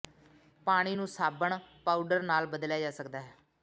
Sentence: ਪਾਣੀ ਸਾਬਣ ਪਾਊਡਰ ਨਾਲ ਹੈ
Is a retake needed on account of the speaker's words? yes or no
yes